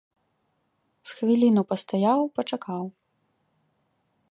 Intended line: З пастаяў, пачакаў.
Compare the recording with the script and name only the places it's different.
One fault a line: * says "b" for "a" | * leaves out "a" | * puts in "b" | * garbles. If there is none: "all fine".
* puts in "хвіліну"